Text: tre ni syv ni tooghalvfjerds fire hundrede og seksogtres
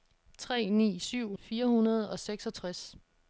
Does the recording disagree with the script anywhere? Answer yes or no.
yes